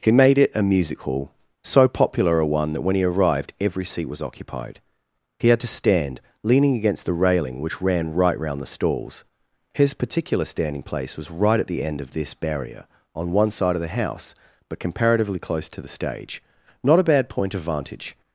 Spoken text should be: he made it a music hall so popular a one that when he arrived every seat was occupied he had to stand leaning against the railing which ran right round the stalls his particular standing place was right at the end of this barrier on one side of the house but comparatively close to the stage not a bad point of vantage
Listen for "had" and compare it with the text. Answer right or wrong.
right